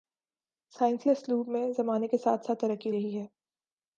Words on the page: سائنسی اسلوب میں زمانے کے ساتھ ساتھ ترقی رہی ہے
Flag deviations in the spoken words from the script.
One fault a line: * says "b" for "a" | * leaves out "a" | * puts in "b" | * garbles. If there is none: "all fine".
all fine